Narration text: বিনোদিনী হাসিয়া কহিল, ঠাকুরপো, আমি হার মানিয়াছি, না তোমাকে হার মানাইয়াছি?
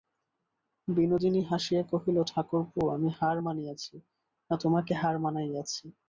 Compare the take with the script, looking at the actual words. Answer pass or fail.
pass